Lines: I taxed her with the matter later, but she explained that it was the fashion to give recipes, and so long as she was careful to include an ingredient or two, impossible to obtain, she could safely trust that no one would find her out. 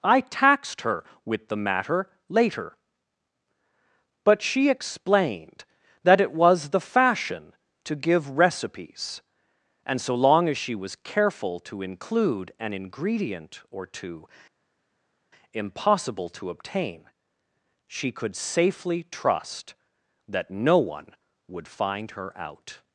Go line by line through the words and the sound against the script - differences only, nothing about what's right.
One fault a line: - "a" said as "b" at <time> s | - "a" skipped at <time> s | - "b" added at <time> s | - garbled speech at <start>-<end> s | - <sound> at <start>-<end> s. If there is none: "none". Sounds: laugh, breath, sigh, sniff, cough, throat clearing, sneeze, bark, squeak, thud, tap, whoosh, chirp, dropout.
none